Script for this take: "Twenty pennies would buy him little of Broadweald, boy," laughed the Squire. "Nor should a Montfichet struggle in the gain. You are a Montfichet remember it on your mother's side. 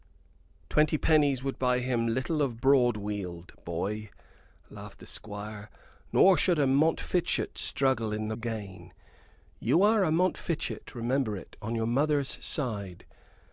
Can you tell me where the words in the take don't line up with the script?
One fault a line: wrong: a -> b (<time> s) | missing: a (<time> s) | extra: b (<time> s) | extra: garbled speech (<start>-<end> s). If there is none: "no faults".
no faults